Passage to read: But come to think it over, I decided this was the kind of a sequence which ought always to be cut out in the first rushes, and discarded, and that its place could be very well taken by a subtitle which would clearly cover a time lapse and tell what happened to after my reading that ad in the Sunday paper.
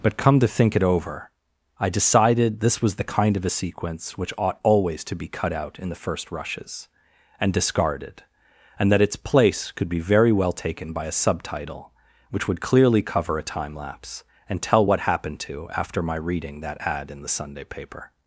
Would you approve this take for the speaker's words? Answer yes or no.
yes